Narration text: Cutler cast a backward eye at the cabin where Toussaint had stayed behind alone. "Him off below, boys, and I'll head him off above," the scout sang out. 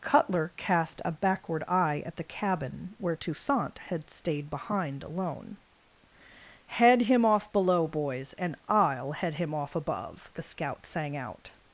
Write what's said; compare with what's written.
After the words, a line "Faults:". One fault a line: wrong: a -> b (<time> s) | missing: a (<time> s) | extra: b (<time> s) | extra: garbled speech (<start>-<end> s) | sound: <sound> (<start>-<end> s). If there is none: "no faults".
Cutler cast a backward eye at the cabin where Toussaint had stayed behind alone. "Head him off below, boys, and I'll head him off above," the scout sang out.
Faults:
extra: Head (6.7 s)